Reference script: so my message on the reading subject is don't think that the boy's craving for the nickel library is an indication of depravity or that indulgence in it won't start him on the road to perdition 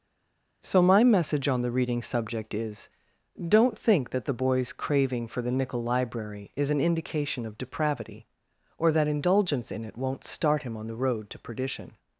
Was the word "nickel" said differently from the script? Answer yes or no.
no